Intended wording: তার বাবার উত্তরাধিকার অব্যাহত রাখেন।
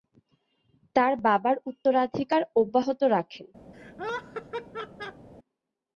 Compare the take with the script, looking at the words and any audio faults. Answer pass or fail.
fail